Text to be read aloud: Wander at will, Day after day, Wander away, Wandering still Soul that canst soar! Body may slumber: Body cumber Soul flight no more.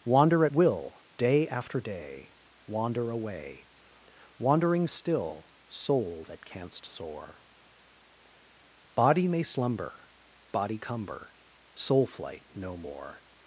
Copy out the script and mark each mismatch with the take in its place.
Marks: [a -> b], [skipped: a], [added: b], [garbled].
Wander at will, Day after day, Wander away, Wandering still Soul that canst soar! Body may slumber: Body cumber Soul flight no more.